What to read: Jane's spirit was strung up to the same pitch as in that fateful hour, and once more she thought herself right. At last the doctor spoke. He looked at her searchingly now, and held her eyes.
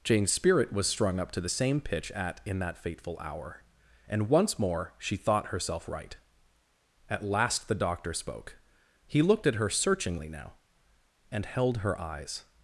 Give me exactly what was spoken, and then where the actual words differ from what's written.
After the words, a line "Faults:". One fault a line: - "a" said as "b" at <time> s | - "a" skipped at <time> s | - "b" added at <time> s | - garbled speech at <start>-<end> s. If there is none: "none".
Jane's spirit was strung up to the same pitch at in that fateful hour, and once more she thought herself right. At last the doctor spoke. He looked at her searchingly now, and held her eyes.
Faults:
- "as" said as "at" at 2.1 s